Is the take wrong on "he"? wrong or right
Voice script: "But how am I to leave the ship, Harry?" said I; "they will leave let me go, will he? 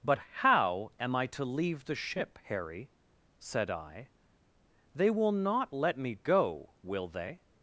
wrong